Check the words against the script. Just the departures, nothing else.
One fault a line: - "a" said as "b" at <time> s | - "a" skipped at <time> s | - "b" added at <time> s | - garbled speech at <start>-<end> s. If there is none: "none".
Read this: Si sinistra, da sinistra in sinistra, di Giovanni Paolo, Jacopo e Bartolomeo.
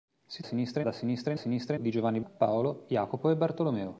none